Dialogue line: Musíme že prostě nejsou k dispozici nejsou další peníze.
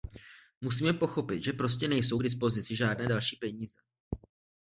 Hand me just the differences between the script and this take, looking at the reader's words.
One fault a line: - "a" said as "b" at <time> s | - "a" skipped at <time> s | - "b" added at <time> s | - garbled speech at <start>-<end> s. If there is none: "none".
- "pochopit" added at 0.9 s
- "nejsou" said as "žádné" at 2.7 s